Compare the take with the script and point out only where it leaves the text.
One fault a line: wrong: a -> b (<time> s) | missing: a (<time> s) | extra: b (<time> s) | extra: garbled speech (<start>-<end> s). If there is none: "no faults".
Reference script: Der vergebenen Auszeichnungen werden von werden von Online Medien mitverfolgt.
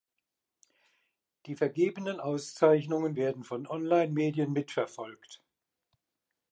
wrong: Der -> Die (1.4 s)
missing: werden von (3.7 s)